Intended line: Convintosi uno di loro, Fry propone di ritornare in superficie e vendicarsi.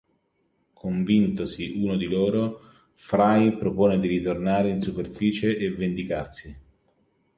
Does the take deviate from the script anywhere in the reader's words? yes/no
no